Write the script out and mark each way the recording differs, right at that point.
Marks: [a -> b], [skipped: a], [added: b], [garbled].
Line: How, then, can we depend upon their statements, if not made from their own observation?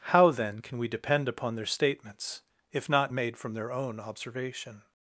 How, then, can we depend upon their statements, if not made from their own observation?